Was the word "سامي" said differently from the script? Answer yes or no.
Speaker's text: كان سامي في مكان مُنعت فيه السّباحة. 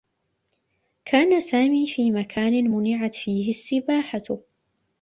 no